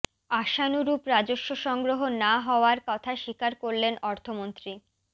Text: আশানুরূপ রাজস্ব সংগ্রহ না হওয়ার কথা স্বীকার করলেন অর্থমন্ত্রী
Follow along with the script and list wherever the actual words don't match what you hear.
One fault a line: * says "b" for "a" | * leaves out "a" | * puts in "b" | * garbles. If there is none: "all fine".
all fine